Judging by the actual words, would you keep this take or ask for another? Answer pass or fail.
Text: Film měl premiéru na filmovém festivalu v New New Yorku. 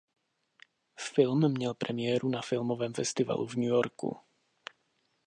fail